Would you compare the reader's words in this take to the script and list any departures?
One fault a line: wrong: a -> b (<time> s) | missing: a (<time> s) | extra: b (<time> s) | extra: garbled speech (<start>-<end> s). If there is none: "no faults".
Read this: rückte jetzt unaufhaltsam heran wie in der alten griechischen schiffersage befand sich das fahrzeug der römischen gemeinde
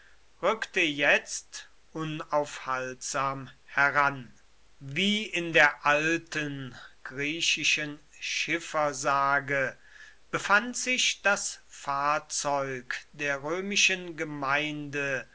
no faults